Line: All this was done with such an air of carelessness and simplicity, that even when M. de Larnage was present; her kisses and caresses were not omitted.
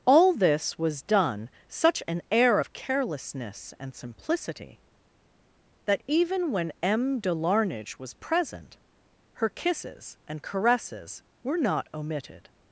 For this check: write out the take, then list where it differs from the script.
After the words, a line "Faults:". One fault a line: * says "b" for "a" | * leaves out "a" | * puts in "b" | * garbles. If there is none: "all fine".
All this was done such an air of carelessness and simplicity, that even when M. de Larnage was present; her kisses and caresses were not omitted.
Faults:
* leaves out "with"